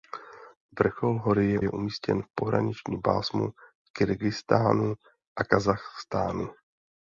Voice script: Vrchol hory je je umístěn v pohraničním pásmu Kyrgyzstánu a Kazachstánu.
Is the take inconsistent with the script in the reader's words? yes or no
no